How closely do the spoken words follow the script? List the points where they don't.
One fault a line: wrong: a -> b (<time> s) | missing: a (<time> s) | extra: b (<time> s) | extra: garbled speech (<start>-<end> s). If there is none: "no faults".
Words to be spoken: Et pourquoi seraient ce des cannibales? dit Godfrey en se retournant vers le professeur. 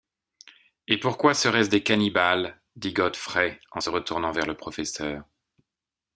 no faults